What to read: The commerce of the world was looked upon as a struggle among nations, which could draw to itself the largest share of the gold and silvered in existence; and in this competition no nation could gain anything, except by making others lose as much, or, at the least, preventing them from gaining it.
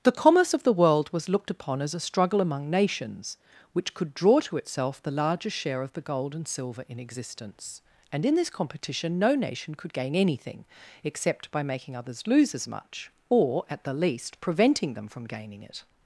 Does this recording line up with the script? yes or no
no